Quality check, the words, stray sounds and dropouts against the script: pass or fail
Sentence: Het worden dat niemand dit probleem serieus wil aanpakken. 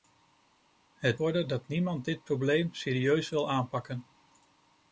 pass